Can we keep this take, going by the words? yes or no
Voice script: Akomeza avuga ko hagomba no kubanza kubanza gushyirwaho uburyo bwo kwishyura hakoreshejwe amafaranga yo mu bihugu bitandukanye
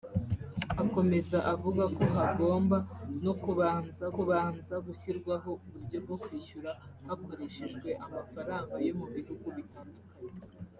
yes